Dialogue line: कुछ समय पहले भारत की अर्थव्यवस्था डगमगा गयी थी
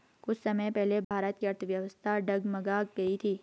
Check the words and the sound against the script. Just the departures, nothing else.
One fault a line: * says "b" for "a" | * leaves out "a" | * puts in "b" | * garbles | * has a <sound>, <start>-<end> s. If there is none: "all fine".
* has a dropout, 1.0-1.1 s